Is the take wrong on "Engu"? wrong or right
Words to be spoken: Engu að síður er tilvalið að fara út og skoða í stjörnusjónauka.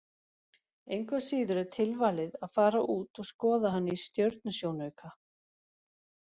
right